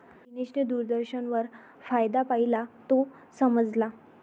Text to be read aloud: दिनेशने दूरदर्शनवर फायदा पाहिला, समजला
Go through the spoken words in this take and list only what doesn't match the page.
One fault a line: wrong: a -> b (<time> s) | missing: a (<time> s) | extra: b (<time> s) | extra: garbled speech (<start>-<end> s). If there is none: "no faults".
extra: तो (2.9 s)